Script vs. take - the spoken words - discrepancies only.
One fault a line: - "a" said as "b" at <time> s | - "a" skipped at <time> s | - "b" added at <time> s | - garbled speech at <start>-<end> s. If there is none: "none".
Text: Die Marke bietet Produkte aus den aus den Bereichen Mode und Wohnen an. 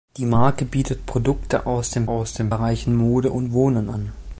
none